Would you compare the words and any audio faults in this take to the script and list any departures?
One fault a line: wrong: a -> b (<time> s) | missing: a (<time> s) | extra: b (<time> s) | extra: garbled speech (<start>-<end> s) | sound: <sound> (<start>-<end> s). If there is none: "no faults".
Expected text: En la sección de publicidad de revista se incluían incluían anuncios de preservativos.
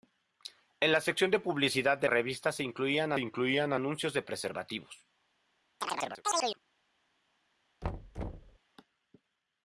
sound: chirp (5.8-6.6 s)
sound: thud (7.8-8.6 s)